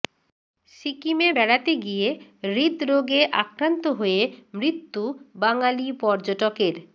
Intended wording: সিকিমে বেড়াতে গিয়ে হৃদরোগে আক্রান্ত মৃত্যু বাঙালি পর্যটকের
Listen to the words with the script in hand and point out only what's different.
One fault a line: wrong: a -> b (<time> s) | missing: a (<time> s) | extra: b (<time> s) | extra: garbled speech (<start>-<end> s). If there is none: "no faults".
extra: হয়ে (4.0 s)